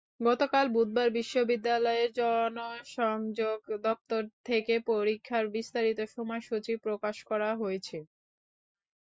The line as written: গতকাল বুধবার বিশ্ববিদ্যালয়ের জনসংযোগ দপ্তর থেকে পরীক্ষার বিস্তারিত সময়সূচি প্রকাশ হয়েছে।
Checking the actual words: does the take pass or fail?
fail